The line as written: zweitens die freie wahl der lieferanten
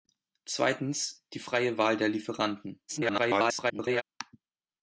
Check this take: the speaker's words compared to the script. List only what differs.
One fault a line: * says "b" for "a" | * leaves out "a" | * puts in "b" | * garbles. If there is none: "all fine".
* garbles